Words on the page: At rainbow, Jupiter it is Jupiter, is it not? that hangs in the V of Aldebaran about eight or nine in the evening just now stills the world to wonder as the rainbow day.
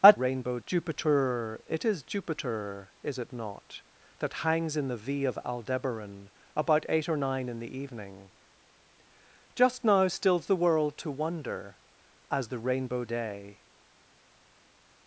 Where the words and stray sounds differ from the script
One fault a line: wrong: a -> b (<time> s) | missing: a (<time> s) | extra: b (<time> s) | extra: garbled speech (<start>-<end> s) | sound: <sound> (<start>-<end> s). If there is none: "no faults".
no faults